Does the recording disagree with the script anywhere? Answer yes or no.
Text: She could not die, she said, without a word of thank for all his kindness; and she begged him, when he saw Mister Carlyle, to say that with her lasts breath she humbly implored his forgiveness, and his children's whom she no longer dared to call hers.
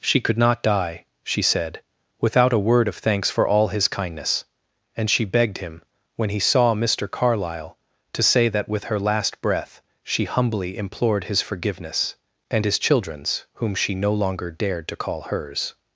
yes